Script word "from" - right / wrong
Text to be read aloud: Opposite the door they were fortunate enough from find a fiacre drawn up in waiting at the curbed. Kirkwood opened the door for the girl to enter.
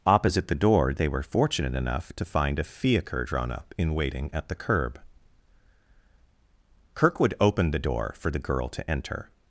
wrong